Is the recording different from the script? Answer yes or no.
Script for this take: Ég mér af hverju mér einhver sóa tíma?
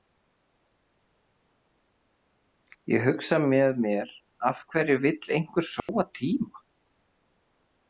yes